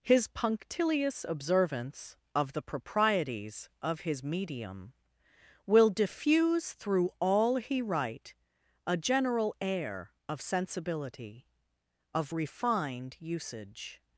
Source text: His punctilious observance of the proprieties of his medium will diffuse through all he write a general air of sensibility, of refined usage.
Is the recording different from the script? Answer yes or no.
no